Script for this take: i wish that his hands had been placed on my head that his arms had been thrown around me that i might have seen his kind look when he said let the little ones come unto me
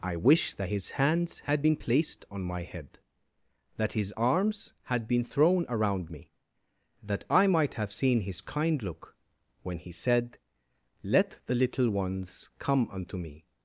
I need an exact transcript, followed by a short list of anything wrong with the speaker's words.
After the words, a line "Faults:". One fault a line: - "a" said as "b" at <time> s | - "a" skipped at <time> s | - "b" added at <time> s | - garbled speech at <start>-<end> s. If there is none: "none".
i wish that his hands had been placed on my head that his arms had been thrown around me that i might have seen his kind look when he said let the little ones come unto me
Faults:
none